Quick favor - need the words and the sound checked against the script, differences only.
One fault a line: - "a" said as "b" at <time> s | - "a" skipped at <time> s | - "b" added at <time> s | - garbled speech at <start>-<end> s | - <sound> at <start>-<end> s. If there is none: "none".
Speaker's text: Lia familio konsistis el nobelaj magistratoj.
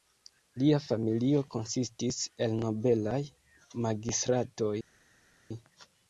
none